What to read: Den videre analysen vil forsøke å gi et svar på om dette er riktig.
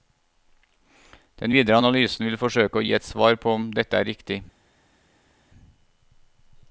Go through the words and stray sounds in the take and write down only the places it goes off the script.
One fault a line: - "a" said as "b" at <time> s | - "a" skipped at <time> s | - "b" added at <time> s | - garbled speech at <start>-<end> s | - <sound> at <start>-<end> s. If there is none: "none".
none